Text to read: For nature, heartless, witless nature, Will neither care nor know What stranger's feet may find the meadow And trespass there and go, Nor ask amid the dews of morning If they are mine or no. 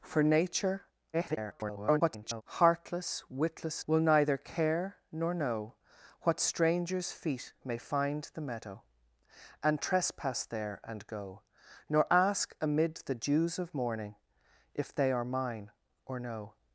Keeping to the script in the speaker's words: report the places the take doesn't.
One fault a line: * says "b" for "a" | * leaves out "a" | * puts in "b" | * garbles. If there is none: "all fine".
* garbles
* leaves out "nature"